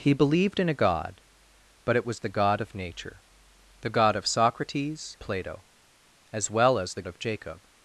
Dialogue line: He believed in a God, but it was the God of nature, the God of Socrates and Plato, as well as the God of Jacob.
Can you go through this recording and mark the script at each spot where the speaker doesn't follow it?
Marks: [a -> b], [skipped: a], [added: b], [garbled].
He believed in a God, but it was the God of nature, the God of Socrates [skipped: and] Plato, as well as the [skipped: God] of Jacob.